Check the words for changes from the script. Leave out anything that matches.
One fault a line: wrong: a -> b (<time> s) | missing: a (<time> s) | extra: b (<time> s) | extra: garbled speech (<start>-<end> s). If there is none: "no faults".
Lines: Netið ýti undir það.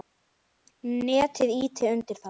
no faults